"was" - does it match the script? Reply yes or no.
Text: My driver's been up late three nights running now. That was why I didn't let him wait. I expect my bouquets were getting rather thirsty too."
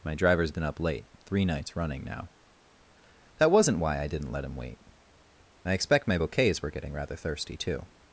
no